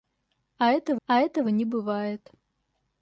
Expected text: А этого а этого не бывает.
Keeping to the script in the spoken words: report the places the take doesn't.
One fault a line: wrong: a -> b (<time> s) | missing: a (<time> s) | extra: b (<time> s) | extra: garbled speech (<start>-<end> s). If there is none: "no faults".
no faults